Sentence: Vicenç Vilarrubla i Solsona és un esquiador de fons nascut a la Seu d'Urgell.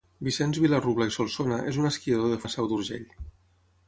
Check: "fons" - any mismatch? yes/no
yes